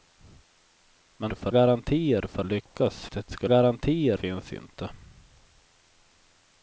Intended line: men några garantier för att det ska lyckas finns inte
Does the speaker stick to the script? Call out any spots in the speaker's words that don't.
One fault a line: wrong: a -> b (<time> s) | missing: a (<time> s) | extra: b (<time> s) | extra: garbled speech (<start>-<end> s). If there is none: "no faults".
wrong: några -> för (1.3 s)
wrong: att -> lyckas (2.4 s)
wrong: lyckas -> garantier (3.4 s)